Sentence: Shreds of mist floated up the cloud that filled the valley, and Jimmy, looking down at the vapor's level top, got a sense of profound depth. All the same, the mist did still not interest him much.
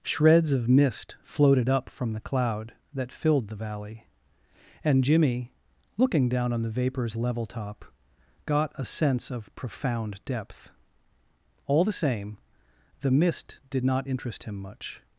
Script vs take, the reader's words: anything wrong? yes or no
yes